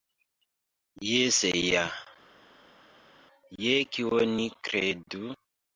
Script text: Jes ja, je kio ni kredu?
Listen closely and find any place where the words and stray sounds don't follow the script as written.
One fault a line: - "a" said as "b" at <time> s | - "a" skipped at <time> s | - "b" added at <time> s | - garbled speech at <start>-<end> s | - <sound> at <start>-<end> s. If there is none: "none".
none